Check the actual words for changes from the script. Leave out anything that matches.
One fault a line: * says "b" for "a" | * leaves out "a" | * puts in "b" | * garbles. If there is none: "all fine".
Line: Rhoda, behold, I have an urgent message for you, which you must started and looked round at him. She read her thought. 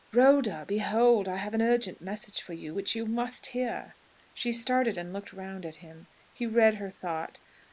* puts in "hear She"
* says "He" for "She"